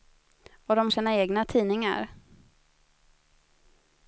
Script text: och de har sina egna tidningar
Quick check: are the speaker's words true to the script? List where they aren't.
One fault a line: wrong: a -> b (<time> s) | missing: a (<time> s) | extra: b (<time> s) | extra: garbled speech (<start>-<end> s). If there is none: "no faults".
missing: har (0.9 s)